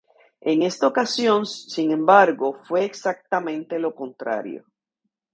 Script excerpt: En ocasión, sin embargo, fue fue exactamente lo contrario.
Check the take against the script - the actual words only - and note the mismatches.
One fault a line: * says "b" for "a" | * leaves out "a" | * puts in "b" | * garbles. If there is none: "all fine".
* puts in "esta"
* leaves out "fue"